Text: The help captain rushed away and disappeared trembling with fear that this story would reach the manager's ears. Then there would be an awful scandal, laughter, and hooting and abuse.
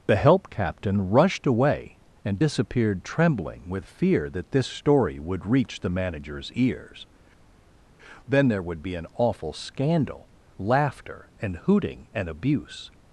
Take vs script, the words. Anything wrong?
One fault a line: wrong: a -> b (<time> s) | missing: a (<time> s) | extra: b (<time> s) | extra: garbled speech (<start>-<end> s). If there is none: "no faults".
no faults